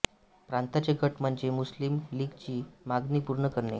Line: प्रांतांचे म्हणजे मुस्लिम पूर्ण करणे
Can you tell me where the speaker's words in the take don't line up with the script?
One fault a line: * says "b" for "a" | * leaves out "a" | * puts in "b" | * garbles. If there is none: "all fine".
* puts in "गट"
* puts in "लीगची मागणी"